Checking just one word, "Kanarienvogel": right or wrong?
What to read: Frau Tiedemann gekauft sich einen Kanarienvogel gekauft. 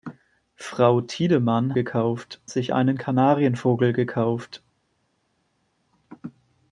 right